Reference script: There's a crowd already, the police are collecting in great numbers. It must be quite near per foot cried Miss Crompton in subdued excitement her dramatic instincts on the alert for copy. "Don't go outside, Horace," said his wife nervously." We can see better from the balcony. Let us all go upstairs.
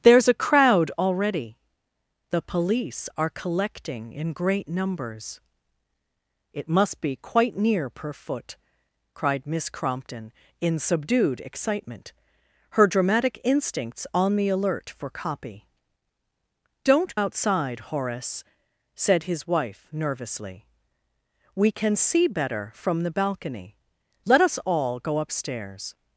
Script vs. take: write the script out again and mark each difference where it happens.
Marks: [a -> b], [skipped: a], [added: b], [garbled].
There's a crowd already, the police are collecting in great numbers. It must be quite near per foot cried Miss Crompton in subdued excitement her dramatic instincts on the alert for copy. "Don't [skipped: go] outside, Horace," said his wife nervously." We can see better from the balcony. Let us all go upstairs.